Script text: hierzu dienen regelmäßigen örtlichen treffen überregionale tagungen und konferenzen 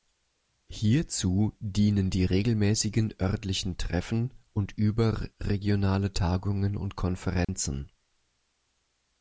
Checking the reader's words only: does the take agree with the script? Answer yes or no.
no